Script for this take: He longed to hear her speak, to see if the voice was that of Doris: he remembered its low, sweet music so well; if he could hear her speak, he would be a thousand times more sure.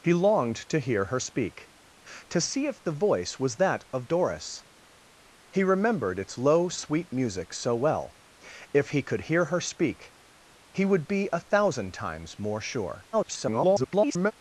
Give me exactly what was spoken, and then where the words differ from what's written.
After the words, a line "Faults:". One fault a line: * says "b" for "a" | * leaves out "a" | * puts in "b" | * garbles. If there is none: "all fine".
He longed to hear her speak, to see if the voice was that of Doris: he remembered its low, sweet music so well; if he could hear her speak, he would be a thousand times more sure. [garbled]
Faults:
* garbles